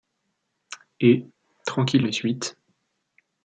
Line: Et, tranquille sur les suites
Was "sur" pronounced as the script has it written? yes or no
no